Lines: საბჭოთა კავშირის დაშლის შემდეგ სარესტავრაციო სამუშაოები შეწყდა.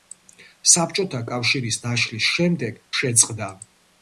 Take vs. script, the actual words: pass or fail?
fail